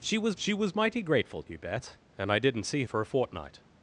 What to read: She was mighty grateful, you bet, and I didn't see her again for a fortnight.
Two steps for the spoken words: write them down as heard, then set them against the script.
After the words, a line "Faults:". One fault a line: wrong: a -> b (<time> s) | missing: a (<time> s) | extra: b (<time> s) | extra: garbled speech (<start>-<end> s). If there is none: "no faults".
She was she was mighty grateful, you bet, and I didn't see for a fortnight.
Faults:
extra: she was (0.4 s)
missing: her again (2.8 s)